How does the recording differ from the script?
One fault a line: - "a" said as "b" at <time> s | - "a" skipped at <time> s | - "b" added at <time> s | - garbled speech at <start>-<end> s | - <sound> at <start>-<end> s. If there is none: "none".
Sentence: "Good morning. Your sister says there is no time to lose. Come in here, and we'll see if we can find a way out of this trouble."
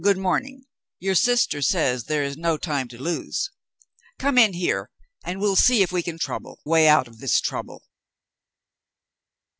- "find" said as "trouble" at 6.2 s